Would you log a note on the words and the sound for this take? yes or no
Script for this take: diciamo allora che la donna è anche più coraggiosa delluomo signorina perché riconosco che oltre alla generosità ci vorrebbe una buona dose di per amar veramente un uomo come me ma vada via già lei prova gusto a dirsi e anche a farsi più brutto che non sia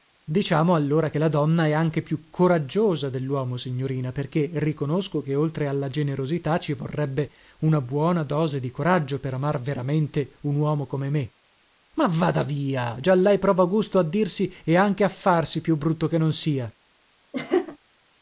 yes